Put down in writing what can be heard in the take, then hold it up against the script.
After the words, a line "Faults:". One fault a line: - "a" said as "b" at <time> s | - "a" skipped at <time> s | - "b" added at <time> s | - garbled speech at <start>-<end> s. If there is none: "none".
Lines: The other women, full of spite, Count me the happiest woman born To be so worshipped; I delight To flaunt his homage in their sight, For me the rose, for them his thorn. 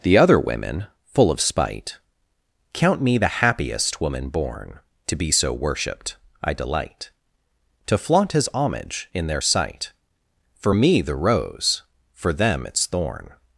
The other women, full of spite, Count me the happiest woman born To be so worshipped; I delight To flaunt his homage in their sight, For me the rose, for them its thorn.
Faults:
- "his" said as "its" at 12.7 s